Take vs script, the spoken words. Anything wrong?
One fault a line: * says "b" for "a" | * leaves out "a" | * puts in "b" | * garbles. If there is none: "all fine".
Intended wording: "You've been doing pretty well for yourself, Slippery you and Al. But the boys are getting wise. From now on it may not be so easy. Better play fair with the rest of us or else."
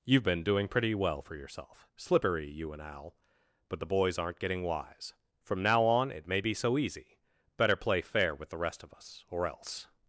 * says "aren't" for "are"
* leaves out "not"